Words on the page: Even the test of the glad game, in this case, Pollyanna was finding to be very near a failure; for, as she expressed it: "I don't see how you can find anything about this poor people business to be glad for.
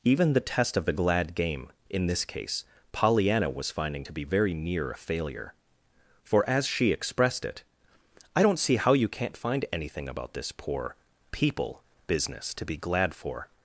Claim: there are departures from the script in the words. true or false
true